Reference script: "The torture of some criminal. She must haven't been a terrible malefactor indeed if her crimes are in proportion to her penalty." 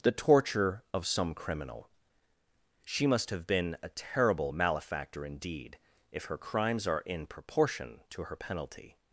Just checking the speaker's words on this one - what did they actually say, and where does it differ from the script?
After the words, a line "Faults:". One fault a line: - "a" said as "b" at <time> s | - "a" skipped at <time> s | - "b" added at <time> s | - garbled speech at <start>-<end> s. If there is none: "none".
"The torture of some criminal. She must have been a terrible malefactor indeed if her crimes are in proportion to her penalty."
Faults:
- "haven't" said as "have" at 3.3 s